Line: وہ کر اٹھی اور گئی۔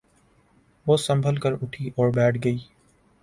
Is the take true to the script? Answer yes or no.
no